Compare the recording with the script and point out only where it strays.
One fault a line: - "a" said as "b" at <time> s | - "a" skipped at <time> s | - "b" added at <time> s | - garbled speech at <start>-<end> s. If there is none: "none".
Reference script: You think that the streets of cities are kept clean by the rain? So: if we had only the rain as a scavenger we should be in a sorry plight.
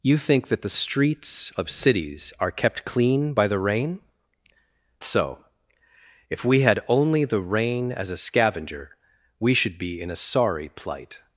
none